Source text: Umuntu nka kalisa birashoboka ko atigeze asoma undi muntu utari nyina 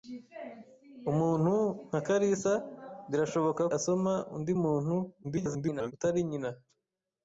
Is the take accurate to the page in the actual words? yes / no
no